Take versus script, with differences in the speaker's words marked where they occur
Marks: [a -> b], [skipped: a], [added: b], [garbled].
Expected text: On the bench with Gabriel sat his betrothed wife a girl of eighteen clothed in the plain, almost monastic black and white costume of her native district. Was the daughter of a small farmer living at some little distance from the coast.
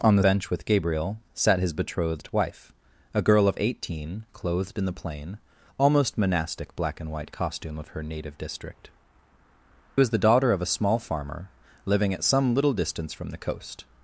On the bench with Gabriel sat his betrothed wife a girl of eighteen clothed in the plain, almost monastic black and white costume of her native district. Was the daughter of a small farmer living at some little distance from the coast.